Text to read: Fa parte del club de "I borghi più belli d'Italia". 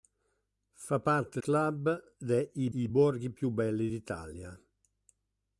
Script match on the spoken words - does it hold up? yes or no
no